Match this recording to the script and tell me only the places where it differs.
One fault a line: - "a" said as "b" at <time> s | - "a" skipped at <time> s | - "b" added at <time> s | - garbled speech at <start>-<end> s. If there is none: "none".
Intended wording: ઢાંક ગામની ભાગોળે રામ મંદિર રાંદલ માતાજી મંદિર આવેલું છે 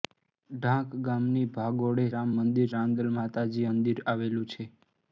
none